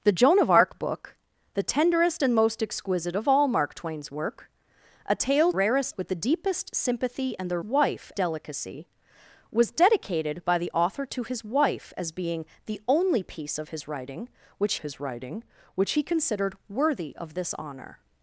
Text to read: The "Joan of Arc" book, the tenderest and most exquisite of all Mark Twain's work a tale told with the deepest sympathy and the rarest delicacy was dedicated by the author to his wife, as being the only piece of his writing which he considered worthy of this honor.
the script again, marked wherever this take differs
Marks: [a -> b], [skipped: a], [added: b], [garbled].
The "Joan of Arc" book, the tenderest and most exquisite of all Mark Twain's work a tale [told -> rarest] with the deepest sympathy and the [rarest -> wife] delicacy was dedicated by the author to his wife, as being the only piece of his writing which [added: his writing which] he considered worthy of this honor.